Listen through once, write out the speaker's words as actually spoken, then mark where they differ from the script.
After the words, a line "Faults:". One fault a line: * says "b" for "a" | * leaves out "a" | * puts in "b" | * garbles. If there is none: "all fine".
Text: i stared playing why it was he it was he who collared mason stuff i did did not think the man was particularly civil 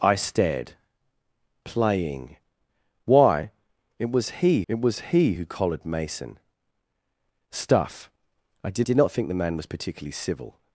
i stared playing why it was he it was he who collared mason stuff i did did not think the man was particularly civil
Faults:
all fine